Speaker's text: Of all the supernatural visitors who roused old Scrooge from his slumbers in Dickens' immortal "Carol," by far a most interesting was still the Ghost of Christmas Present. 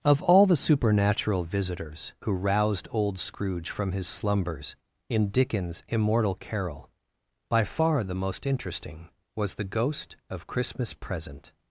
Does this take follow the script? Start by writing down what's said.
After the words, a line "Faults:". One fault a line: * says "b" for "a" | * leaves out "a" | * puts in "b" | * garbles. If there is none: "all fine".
Of all the supernatural visitors who roused old Scrooge from his slumbers in Dickens' immortal "Carol," by far the most interesting was the Ghost of Christmas Present.
Faults:
* says "the" for "a"
* leaves out "still"